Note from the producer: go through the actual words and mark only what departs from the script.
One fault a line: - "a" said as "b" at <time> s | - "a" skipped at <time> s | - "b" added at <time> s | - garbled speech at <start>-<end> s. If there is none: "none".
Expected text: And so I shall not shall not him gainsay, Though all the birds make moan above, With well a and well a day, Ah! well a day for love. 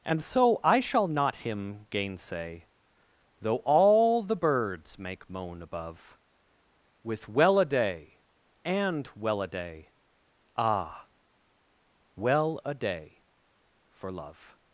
- "shall not" skipped at 1.4 s
- "day" added at 7.7 s